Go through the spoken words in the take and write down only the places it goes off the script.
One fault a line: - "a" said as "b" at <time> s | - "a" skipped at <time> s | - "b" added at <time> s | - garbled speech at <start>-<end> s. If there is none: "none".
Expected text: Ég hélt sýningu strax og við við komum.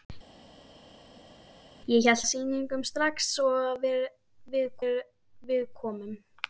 none